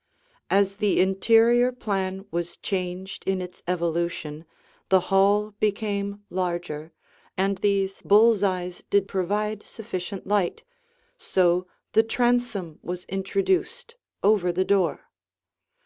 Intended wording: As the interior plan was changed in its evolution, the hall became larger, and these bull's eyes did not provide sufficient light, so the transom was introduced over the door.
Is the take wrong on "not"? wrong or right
wrong